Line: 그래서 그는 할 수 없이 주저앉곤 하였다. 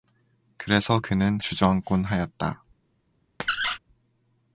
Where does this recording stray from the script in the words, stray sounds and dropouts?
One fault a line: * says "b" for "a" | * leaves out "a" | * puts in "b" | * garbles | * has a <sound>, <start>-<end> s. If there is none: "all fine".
* leaves out "할 수 없이"
* has a squeak, 3.4-3.8 s